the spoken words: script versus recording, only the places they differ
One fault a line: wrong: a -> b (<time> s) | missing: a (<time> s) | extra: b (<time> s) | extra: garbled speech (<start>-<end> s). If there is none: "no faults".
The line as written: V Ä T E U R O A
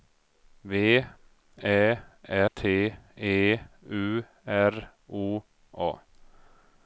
no faults